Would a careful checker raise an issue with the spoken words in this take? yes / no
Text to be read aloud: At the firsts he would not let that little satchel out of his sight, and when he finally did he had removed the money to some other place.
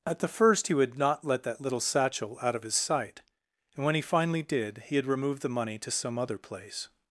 yes